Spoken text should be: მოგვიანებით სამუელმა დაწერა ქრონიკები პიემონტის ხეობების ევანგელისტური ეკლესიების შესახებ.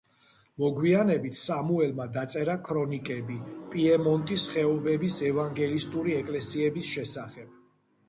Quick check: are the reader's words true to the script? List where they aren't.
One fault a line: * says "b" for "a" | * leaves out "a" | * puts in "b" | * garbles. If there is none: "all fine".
all fine